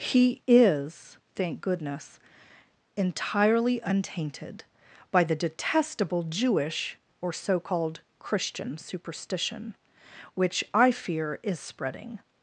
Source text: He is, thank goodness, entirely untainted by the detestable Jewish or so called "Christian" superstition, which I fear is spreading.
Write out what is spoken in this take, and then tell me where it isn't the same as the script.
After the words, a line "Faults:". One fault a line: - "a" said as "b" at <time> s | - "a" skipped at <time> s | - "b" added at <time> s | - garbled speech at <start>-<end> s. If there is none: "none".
He is, thank goodness, entirely untainted by the detestable Jewish or so called "Christian" superstition, which I fear is spreading.
Faults:
none